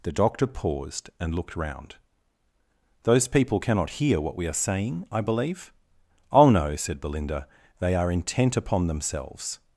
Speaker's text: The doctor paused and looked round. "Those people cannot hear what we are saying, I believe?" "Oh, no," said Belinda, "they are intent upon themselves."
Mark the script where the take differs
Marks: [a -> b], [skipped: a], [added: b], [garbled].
The doctor paused and looked round. "Those people cannot hear what we are saying, I believe?" "Oh, no," said Belinda, "they are intent upon themselves."